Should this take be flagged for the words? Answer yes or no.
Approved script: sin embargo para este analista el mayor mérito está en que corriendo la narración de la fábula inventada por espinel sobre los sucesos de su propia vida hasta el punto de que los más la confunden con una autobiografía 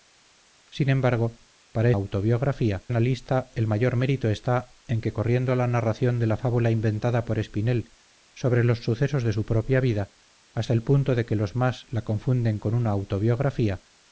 yes